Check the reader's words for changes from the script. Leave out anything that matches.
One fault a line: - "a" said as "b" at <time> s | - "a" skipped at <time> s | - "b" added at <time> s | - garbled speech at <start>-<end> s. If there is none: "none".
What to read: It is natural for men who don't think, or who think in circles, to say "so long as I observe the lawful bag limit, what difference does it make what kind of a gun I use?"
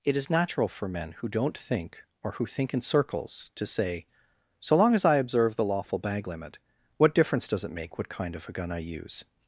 none